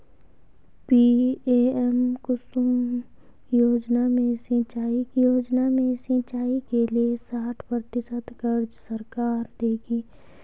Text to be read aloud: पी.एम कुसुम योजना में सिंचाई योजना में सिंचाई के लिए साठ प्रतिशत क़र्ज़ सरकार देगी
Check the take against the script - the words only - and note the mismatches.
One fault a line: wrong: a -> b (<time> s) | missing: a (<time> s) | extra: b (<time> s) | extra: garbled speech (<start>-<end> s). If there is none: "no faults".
no faults